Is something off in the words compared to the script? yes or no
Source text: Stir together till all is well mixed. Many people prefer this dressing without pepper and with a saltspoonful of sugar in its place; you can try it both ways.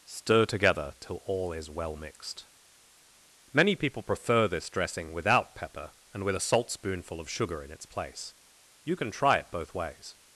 no